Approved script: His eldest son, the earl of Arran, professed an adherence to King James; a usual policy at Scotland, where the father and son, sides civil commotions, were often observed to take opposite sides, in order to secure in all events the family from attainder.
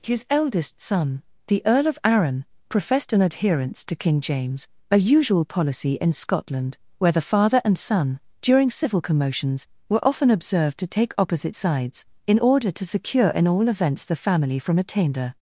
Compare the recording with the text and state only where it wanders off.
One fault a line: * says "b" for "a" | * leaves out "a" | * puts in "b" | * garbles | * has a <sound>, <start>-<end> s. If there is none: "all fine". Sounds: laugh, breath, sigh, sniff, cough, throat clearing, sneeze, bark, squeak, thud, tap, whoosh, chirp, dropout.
* says "in" for "at"
* says "during" for "sides"